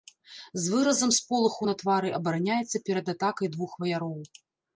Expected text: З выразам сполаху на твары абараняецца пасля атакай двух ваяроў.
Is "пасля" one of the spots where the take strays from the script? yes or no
yes